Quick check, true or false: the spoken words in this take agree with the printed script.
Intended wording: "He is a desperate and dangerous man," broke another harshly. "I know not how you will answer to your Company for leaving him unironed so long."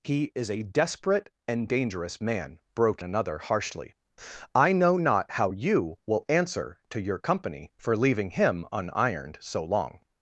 true